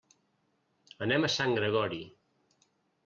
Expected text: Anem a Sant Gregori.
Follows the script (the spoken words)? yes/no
yes